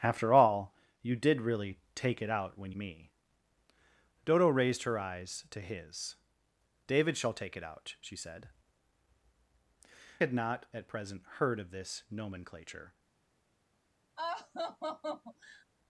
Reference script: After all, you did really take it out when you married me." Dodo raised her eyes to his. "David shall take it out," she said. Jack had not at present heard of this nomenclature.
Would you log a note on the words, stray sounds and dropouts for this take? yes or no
yes